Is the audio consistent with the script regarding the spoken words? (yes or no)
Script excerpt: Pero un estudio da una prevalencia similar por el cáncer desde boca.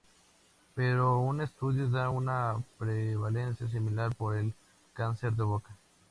no